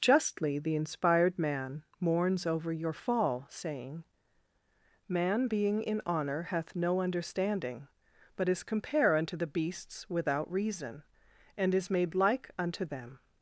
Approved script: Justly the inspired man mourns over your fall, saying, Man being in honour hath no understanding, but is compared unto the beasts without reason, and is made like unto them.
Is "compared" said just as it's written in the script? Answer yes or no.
no